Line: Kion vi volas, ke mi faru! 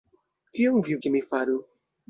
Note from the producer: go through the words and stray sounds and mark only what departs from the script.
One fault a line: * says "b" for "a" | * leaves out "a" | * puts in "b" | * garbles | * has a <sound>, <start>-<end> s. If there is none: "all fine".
* leaves out "volas"